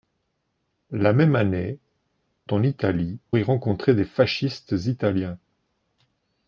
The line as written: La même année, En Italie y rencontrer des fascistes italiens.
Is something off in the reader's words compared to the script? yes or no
no